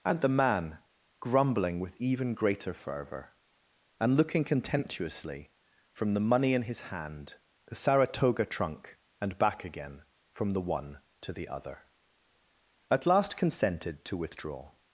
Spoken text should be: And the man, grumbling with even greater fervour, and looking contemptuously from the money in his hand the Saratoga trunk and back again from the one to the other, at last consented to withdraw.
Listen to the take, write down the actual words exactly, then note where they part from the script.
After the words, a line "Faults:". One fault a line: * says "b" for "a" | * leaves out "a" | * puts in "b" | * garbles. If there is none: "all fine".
And the man, grumbling with even greater fervour, and looking contemptuously from the money in his hand the Saratoga trunk and back again from the one to the other, at last consented to withdraw.
Faults:
all fine